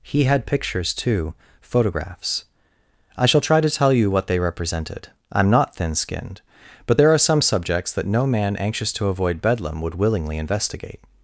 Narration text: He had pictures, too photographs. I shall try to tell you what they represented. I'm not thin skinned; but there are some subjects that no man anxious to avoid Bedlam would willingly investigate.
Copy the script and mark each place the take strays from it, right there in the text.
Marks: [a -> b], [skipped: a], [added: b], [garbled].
He had pictures, too photographs. I shall try to tell you what they represented. I'm not thin skinned; but there are some subjects that no man anxious to avoid Bedlam would willingly investigate.